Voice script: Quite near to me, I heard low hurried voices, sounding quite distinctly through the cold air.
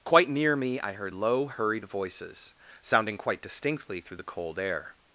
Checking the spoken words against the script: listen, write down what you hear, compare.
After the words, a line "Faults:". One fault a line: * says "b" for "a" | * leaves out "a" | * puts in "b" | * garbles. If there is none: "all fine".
Quite near me, I heard low hurried voices, sounding quite distinctly through the cold air.
Faults:
* leaves out "to"